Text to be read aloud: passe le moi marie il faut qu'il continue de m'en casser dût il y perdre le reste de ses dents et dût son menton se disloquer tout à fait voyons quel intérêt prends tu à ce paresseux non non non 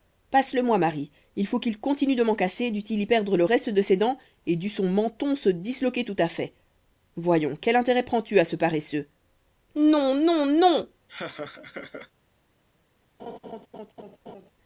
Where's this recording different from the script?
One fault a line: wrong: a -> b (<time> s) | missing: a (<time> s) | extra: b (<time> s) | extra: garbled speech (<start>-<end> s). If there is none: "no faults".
no faults